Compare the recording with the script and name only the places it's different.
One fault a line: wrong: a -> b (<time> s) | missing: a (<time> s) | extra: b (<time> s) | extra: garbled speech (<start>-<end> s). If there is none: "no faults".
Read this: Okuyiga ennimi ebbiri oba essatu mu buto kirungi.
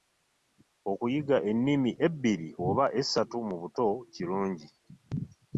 no faults